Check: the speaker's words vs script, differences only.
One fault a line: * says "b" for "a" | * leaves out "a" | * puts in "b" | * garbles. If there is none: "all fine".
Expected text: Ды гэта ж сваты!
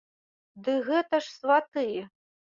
all fine